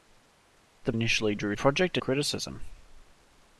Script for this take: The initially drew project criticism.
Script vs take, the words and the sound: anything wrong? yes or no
no